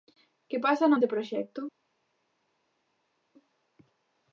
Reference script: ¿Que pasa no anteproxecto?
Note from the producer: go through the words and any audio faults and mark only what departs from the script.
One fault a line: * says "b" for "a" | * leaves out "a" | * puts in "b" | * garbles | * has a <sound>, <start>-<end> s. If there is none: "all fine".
all fine